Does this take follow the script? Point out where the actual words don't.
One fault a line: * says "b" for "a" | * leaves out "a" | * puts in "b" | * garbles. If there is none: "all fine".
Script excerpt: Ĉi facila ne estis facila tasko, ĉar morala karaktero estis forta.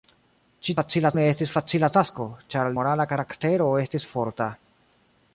all fine